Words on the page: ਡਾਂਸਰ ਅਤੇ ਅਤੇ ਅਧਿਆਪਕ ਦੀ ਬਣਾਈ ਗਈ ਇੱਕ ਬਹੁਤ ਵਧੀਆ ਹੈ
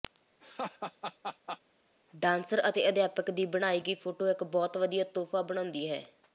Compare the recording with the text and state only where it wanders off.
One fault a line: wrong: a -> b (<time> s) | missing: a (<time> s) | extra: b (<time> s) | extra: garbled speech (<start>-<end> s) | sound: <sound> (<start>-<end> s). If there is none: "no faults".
sound: laugh (0.4-1.6 s)
missing: ਅਤੇ (2.9 s)
extra: ਫੋਟੋ (4.0 s)
extra: ਤੋਹਫ਼ਾ ਬਣਾਉਂਦੀ (5.1 s)